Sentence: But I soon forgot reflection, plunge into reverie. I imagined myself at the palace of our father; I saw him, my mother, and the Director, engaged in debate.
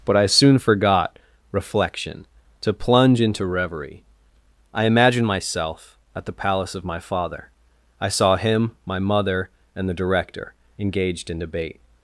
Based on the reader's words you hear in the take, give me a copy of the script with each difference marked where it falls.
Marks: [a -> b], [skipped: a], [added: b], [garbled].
But I soon forgot reflection, [added: to] plunge into reverie. I imagined myself at the palace of [our -> my] father; I saw him, my mother, and the Director, engaged in debate.